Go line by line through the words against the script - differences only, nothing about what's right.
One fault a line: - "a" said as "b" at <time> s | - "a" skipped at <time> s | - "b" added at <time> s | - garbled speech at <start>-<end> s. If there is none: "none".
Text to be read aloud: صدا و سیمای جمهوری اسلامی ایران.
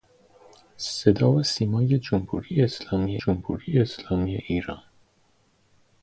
- "جمهوری اسلامی" added at 3.1 s